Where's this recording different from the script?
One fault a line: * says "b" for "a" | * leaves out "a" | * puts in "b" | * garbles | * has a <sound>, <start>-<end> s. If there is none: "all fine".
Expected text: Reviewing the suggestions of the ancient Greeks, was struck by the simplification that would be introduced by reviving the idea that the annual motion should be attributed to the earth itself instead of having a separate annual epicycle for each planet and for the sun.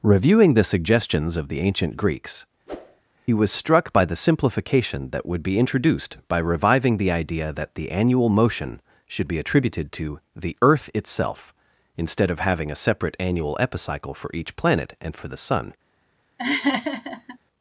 * has a whoosh, 2.7-3.0 s
* has a laugh, 16.4-17.4 s